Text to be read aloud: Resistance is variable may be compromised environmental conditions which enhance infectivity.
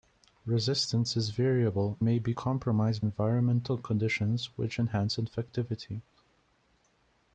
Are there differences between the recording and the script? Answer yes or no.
no